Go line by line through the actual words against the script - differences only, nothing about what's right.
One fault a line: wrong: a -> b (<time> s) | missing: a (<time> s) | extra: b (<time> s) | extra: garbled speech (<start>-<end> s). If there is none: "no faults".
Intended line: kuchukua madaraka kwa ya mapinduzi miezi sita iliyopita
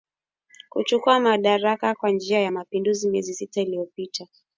extra: njia (2.1 s)